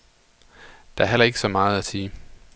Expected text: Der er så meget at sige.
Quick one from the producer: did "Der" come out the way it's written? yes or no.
yes